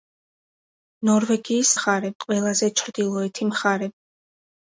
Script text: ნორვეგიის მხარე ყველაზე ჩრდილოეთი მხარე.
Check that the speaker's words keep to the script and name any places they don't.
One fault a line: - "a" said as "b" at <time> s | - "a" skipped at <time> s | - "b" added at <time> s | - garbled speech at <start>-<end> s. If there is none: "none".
none